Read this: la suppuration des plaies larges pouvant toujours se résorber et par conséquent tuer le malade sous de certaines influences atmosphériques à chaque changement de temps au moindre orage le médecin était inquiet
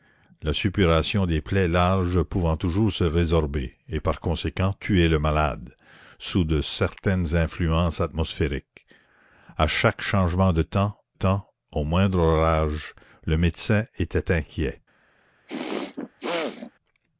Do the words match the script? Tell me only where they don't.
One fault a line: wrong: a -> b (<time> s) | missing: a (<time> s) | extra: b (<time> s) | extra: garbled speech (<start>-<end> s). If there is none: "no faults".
extra: temps (11.1 s)